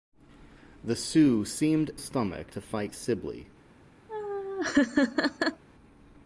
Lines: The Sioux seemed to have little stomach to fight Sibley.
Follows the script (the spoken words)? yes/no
no